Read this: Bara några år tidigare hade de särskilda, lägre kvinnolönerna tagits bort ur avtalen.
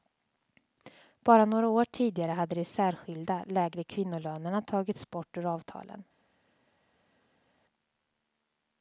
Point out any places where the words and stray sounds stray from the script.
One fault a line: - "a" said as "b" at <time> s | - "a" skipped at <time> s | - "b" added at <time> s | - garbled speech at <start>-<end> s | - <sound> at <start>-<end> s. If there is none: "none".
none